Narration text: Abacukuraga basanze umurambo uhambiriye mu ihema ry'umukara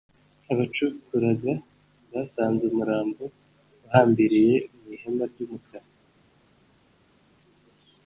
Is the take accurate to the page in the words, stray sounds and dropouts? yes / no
yes